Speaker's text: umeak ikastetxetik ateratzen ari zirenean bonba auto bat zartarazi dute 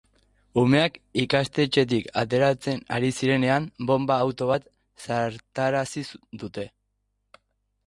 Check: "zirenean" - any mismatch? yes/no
no